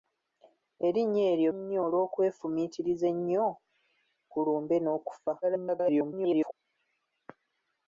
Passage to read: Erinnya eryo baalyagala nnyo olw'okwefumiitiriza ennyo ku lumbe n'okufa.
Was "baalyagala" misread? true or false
true